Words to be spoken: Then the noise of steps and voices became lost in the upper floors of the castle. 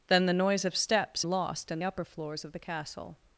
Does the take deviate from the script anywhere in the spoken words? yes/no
yes